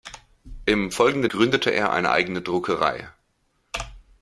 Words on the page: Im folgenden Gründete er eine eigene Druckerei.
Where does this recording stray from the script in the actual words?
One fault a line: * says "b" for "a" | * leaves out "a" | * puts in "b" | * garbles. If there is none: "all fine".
all fine